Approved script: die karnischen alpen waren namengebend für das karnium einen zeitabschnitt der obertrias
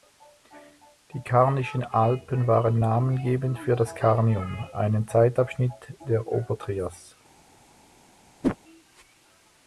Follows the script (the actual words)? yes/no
yes